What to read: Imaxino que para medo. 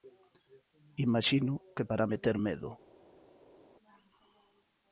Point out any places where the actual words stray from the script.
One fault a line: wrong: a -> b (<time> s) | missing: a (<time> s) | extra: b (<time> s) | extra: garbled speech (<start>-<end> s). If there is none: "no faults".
extra: meter (2.1 s)